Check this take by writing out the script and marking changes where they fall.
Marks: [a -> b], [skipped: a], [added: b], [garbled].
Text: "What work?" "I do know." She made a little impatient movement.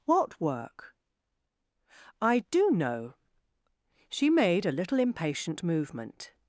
"What work?" "I do know." She made a little impatient movement.